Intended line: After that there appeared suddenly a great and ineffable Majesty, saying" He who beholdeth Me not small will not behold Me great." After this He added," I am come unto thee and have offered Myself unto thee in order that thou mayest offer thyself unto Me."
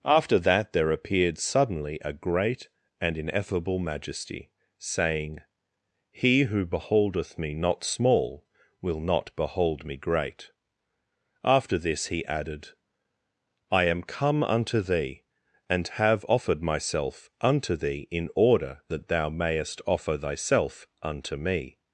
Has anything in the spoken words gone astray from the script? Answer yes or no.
no